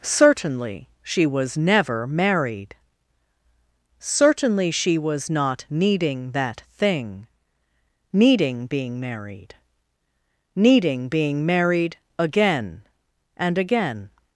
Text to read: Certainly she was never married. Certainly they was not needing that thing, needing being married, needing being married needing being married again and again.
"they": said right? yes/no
no